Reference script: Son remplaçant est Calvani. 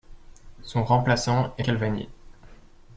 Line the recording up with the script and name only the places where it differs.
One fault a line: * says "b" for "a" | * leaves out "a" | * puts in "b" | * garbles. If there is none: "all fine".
all fine